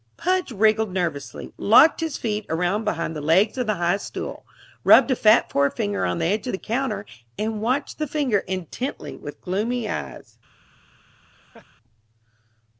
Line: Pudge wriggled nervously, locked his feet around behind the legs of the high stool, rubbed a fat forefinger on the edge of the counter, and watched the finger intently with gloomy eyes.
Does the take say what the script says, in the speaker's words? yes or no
yes